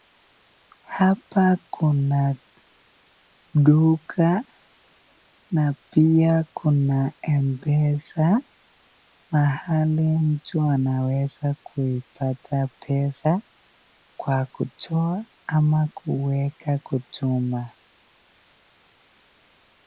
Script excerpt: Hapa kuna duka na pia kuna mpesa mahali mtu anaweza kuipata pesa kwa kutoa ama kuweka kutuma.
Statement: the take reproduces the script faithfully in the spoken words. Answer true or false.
true